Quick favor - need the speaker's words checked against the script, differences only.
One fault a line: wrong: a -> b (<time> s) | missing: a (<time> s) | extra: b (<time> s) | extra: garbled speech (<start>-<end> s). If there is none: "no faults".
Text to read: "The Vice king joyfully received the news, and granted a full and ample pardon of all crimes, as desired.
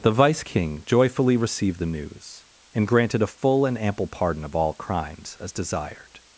no faults